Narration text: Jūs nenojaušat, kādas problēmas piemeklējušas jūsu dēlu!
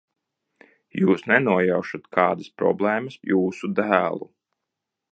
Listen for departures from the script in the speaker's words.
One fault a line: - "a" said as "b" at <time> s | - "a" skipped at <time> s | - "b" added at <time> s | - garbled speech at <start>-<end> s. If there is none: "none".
- "piemeklējušas" skipped at 3.2 s